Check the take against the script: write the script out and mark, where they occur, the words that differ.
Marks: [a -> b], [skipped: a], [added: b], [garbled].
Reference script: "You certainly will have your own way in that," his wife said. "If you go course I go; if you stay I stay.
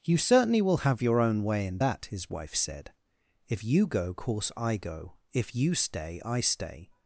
"You certainly will have your own way in that," his wife said. "If you go course I go; if you stay I stay.